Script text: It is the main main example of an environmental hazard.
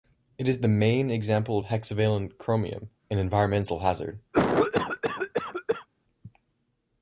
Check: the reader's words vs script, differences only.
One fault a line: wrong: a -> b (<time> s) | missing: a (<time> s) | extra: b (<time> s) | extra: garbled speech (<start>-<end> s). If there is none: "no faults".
missing: main (1.1 s)
extra: hexavalent chromium (1.6 s)